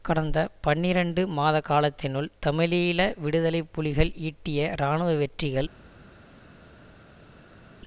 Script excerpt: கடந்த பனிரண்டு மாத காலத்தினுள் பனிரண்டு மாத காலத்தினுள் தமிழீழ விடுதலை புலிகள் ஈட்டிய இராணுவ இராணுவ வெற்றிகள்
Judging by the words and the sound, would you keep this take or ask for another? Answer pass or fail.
fail